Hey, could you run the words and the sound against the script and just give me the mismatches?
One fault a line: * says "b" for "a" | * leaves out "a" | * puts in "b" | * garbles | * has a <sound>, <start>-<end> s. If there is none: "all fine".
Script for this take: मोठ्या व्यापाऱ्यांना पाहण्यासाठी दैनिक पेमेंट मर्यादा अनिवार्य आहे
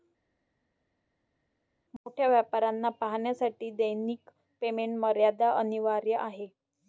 all fine